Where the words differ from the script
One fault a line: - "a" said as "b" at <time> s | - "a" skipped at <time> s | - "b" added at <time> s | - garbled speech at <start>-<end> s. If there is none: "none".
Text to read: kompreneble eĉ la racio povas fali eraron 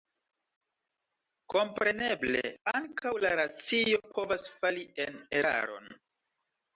- "eĉ" said as "ankaŭ" at 2.7 s
- "en" added at 5.0 s